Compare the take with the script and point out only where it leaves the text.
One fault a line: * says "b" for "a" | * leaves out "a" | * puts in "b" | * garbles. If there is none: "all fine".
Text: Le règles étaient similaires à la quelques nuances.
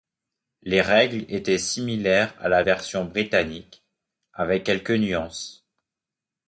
* says "Les" for "Le"
* puts in "version britannique avec"